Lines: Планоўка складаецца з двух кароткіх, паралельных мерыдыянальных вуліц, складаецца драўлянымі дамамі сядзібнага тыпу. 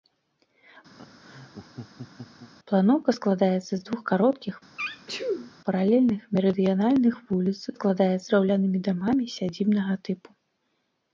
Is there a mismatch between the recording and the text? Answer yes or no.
no